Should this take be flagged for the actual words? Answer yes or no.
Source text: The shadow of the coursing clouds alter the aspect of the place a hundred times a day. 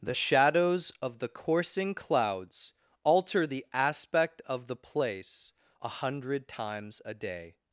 yes